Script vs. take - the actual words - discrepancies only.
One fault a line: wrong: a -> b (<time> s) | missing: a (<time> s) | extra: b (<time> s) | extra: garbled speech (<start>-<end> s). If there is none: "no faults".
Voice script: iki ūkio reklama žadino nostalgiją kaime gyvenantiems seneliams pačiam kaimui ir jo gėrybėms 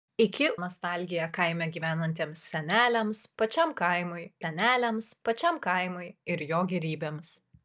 wrong: ūkio reklama žadino nostalgiją kaime gyvenantiems -> nostalgiją kaime gyvenantiems seneliams pačiam kaimui (0.6 s)